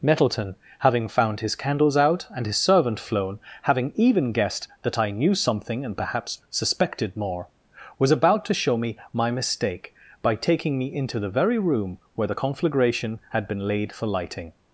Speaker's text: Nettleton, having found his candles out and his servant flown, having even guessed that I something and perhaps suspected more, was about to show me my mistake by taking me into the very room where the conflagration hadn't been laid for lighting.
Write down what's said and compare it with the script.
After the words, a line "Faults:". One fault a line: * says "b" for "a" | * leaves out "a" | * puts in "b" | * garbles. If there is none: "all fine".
Nettleton, having found his candles out and his servant flown, having even guessed that I knew something and perhaps suspected more, was about to show me my mistake by taking me into the very room where the conflagration had been laid for lighting.
Faults:
* puts in "knew"
* says "had" for "hadn't"